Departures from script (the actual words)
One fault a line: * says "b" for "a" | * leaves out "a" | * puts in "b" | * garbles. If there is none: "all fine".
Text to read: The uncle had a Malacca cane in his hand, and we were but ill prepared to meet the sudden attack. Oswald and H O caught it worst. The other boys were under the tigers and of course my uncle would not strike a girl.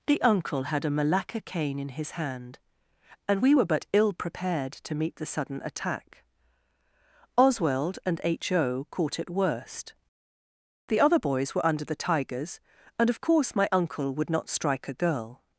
all fine